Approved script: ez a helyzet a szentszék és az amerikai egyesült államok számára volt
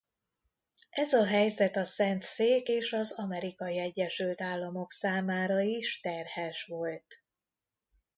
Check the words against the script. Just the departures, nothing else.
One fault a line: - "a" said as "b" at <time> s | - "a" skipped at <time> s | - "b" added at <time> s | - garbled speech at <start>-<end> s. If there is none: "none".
- "is terhes" added at 5.6 s